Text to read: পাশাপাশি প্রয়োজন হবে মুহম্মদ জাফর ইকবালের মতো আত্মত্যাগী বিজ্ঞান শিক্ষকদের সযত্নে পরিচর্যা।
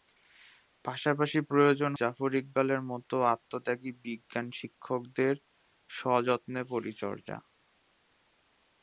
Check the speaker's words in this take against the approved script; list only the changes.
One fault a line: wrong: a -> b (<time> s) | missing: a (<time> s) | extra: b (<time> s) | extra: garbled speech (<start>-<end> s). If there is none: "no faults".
missing: হবে মুহম্মদ (1.9 s)